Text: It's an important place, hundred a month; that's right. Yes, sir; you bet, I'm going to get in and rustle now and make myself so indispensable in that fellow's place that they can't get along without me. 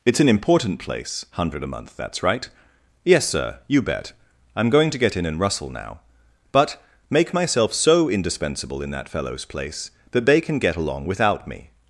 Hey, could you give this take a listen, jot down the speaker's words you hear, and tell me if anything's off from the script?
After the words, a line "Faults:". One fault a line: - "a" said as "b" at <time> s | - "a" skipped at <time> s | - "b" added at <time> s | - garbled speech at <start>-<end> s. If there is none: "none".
It's an important place, hundred a month; that's right. Yes, sir; you bet, I'm going to get in and rustle now but make myself so indispensable in that fellow's place that they can get along without me.
Faults:
- "and" said as "but" at 6.5 s
- "can't" said as "can" at 10.4 s